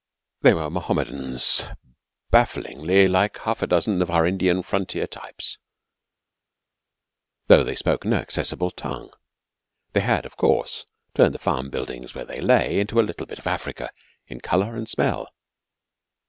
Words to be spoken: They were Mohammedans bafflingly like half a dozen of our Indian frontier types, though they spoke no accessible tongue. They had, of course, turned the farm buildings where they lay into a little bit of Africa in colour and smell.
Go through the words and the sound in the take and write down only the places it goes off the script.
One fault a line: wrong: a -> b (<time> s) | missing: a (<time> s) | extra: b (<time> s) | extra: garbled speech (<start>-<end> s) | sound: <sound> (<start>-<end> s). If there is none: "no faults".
no faults